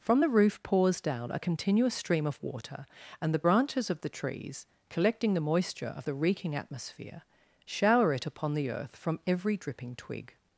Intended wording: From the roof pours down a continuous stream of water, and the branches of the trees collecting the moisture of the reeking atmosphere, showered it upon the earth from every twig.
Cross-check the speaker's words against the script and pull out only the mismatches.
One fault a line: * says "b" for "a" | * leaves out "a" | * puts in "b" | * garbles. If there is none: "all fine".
* says "shower" for "showered"
* puts in "dripping"